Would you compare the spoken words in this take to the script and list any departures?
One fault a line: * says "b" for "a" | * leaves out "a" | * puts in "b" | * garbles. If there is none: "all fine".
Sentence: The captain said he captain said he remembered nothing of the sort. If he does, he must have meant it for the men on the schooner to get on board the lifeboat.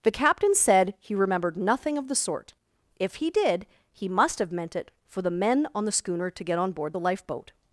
* leaves out "captain said he"
* says "did" for "does"